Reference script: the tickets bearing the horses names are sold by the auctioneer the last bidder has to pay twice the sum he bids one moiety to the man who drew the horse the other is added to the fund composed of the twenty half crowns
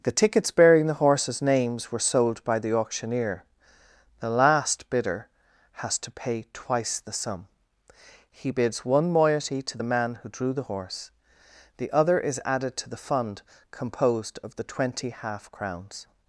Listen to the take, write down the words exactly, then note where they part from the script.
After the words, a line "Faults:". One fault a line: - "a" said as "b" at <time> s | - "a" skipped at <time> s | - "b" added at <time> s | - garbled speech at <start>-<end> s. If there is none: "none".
the tickets bearing the horses names were sold by the auctioneer the last bidder has to pay twice the sum he bids one moiety to the man who drew the horse the other is added to the fund composed of the twenty half crowns
Faults:
- "are" said as "were" at 1.9 s